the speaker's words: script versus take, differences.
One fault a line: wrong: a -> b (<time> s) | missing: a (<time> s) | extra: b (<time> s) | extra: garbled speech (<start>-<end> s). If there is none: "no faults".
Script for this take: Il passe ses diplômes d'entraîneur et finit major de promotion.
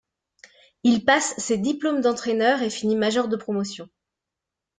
no faults